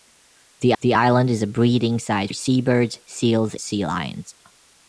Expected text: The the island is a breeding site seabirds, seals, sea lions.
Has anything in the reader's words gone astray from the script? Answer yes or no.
no